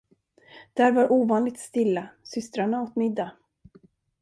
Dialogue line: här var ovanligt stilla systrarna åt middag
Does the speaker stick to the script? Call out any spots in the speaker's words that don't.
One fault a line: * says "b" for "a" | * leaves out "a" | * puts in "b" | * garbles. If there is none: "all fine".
* says "där" for "här"